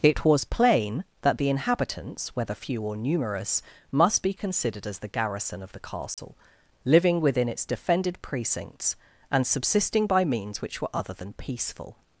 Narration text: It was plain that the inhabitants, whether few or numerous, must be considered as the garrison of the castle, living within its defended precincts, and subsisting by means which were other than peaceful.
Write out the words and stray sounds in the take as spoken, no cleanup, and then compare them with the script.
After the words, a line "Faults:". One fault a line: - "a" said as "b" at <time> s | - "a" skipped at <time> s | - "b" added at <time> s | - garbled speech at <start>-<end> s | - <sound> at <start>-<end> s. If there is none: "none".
It was plain that the inhabitants, whether few or numerous, must be considered as the garrison of the castle, living within its defended precincts, and subsisting by means which were other than peaceful.
Faults:
- dropout at 6.1-6.2 s